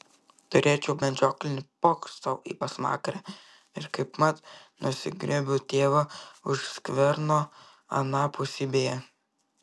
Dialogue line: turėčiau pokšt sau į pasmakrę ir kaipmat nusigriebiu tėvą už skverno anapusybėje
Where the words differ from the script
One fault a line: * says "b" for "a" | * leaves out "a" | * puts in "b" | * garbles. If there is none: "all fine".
* puts in "medžioklinį"